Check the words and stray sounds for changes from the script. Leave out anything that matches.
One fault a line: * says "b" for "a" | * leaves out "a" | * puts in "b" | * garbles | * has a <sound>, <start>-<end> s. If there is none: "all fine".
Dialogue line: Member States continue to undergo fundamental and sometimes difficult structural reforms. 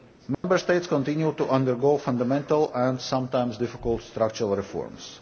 * has a dropout, 0.3-0.4 s